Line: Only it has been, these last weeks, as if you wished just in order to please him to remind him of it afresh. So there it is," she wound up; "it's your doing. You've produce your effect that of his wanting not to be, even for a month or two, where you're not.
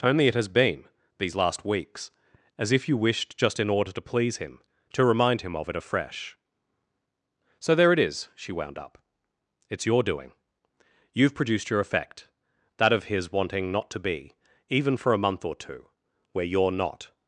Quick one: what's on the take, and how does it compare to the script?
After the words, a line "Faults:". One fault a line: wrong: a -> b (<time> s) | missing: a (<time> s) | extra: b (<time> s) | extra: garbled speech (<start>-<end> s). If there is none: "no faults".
Only it has been, these last weeks, as if you wished just in order to please him to remind him of it afresh. So there it is," she wound up; "it's your doing. You've produced your effect that of his wanting not to be, even for a month or two, where you're not.
Faults:
wrong: produce -> produced (11.3 s)